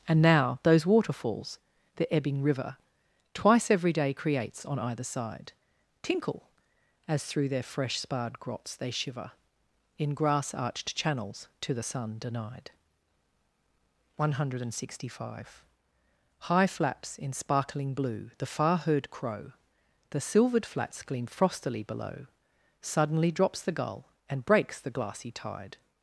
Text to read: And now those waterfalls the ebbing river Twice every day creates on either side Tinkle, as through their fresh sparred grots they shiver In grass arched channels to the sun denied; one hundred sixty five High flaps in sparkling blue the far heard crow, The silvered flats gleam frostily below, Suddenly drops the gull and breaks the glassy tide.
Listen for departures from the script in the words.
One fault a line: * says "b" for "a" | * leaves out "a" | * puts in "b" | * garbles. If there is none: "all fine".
all fine